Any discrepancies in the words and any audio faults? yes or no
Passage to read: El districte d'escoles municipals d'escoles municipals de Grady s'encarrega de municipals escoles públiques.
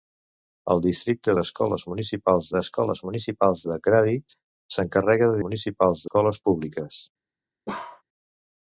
yes